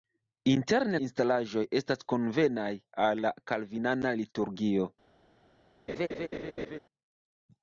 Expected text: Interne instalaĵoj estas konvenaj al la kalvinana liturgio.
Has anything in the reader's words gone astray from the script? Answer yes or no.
no